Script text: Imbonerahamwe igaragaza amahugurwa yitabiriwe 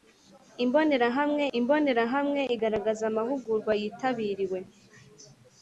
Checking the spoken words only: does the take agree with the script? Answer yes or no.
no